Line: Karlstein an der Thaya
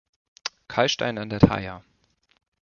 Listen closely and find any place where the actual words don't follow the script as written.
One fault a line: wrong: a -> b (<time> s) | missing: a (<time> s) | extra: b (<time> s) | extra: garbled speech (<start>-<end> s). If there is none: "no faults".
no faults